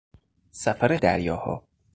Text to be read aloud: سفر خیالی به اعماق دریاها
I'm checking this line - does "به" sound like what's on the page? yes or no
no